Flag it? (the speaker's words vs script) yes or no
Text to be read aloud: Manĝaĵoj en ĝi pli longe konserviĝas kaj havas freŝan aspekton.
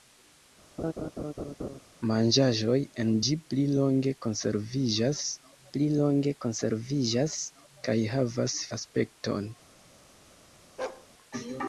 yes